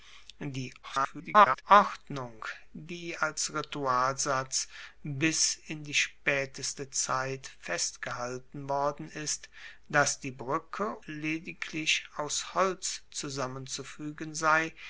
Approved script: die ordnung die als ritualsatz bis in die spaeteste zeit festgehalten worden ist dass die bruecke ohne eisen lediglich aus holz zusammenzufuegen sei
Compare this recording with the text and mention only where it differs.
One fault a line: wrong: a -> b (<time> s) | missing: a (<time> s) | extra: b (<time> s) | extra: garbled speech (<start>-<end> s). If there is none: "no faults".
extra: garbled speech (0.8-1.6 s)
missing: ohne eisen (11.0 s)